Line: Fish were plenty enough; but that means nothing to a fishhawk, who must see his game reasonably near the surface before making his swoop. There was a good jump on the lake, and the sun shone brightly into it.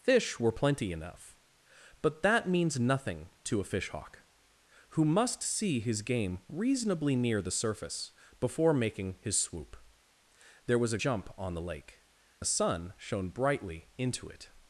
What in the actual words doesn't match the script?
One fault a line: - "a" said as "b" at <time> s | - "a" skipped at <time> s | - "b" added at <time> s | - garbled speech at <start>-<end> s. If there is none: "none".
- "good" skipped at 11.0 s
- "and" skipped at 12.0 s